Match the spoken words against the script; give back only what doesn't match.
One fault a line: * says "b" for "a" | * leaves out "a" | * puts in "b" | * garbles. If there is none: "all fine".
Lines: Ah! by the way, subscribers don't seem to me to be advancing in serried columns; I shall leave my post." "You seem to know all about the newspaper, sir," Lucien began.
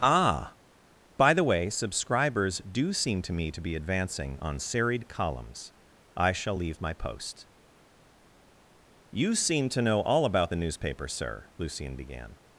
* says "do" for "don't"
* says "on" for "in"